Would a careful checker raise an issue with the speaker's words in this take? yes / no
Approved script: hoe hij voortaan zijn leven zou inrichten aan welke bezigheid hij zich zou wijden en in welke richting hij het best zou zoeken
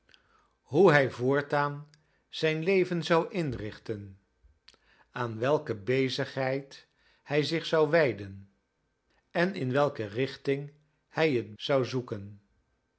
yes